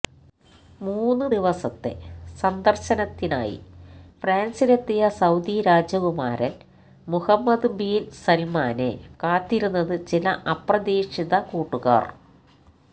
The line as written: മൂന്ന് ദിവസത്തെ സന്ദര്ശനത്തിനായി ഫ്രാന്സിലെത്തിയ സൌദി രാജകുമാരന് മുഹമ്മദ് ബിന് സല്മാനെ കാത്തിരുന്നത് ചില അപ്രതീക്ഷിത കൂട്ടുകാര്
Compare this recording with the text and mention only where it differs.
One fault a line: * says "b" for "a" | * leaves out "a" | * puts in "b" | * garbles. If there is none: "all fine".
all fine